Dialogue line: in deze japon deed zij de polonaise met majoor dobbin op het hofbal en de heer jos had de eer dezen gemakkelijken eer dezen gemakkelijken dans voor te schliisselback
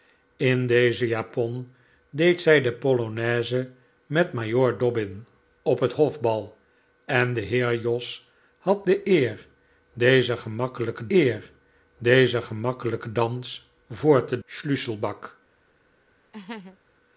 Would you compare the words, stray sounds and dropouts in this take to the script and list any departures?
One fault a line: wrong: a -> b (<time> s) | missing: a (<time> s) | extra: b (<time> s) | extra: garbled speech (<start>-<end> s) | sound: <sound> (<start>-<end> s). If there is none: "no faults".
sound: laugh (16.3-16.8 s)